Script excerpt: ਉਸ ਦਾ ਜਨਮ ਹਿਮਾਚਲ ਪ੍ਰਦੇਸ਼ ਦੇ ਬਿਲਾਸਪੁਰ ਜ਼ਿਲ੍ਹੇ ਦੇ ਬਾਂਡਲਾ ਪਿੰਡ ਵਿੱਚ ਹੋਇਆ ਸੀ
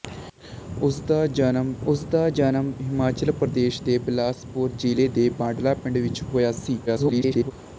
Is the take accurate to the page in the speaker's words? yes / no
no